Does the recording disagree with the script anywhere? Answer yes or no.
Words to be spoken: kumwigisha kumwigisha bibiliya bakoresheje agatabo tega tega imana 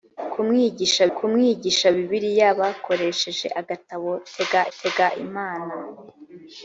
no